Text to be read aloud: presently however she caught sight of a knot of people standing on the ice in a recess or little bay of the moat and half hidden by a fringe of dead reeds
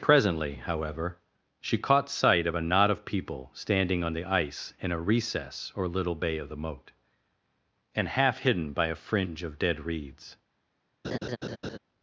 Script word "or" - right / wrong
right